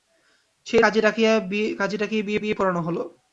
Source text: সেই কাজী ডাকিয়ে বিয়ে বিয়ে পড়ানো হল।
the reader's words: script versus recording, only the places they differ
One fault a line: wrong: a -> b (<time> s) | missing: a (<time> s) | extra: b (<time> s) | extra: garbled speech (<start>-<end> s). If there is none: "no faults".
no faults